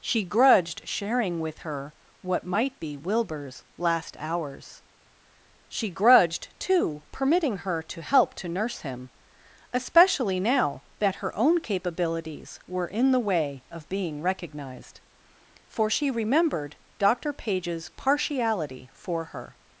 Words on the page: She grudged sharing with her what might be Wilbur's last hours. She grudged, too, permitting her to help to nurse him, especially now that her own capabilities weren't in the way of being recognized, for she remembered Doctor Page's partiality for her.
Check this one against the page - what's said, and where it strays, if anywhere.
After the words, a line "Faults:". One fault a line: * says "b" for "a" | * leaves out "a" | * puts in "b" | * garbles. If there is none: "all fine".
She grudged sharing with her what might be Wilbur's last hours. She grudged, too, permitting her to help to nurse him, especially now that her own capabilities were in the way of being recognized, for she remembered Doctor Page's partiality for her.
Faults:
* says "were" for "weren't"